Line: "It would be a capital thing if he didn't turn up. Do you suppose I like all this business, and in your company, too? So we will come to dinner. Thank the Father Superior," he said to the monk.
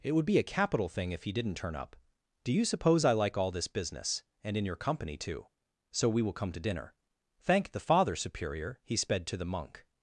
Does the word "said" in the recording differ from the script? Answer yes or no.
yes